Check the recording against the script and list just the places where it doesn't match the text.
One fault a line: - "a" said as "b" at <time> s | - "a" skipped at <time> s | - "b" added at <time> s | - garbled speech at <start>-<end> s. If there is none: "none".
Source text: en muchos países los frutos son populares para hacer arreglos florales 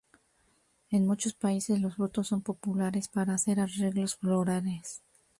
none